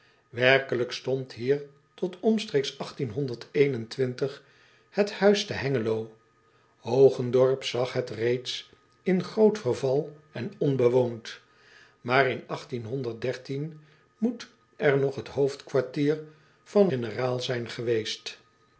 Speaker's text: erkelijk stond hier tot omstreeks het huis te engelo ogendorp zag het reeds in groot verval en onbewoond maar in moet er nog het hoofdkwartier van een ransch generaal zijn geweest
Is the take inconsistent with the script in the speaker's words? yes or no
yes